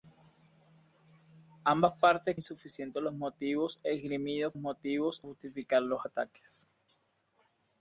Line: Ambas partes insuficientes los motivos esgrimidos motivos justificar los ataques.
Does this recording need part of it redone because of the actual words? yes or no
no